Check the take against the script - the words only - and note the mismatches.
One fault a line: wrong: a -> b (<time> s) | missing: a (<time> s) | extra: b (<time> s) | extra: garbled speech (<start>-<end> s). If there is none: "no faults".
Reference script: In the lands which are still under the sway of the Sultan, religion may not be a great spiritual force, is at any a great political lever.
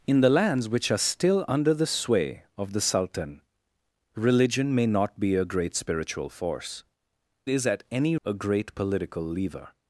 no faults